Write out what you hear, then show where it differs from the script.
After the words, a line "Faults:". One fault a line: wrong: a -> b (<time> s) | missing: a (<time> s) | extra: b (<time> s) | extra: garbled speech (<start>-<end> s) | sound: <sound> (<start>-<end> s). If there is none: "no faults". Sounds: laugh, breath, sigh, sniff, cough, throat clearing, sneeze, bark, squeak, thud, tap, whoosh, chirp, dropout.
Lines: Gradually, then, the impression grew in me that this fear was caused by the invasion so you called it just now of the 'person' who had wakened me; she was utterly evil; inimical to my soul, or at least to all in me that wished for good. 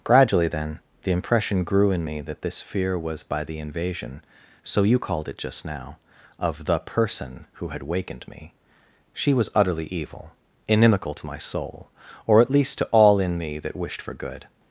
Gradually, then, the impression grew in me that this fear was by the invasion so you called it just now of the 'person' who had wakened me; she was utterly evil; inimical to my soul, or at least to all in me that wished for good.
Faults:
missing: caused (3.2 s)